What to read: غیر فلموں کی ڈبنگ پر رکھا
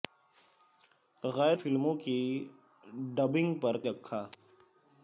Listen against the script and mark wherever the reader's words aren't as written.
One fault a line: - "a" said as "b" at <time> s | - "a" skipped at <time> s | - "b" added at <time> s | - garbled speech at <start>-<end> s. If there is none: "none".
none